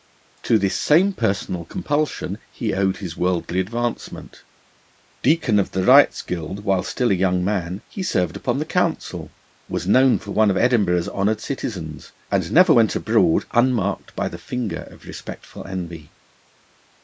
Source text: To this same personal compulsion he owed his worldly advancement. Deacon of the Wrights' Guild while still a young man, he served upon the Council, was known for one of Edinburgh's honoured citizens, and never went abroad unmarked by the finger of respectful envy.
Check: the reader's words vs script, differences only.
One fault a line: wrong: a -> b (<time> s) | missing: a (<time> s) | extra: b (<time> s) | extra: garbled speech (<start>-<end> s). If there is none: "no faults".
no faults